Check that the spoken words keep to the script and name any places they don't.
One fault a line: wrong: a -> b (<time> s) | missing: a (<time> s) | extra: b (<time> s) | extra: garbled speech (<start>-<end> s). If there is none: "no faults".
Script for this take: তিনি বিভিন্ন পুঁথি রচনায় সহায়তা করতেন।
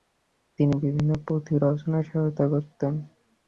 no faults